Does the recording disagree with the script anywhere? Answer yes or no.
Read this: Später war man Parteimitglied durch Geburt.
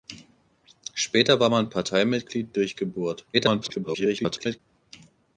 yes